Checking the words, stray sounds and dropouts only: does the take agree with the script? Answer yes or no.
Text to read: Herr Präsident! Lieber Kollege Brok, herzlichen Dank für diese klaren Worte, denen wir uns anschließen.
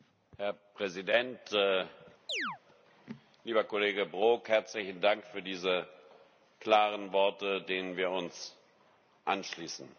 no